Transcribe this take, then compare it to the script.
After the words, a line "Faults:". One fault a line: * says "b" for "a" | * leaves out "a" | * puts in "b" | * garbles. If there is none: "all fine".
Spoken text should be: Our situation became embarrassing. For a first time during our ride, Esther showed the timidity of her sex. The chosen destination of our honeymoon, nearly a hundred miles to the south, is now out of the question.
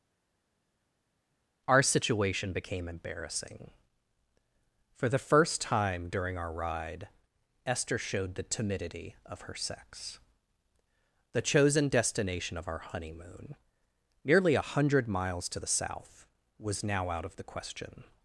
Our situation became embarrassing. For the first time during our ride, Esther showed the timidity of her sex. The chosen destination of our honeymoon, nearly a hundred miles to the south, was now out of the question.
Faults:
* says "the" for "a"
* says "was" for "is"